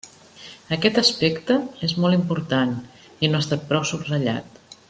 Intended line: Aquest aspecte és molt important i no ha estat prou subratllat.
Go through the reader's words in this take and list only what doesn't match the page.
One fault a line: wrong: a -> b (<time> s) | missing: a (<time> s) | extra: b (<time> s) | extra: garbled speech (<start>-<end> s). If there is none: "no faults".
no faults